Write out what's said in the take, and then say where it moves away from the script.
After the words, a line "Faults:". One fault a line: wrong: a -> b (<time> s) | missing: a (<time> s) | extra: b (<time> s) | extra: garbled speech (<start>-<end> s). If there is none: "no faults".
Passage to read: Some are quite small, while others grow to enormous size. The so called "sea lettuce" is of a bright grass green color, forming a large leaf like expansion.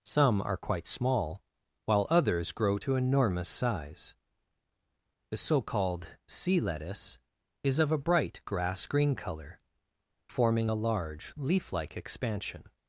Some are quite small, while others grow to enormous size. The so called "sea lettuce" is of a bright grass green color, forming a large leaf like expansion.
Faults:
no faults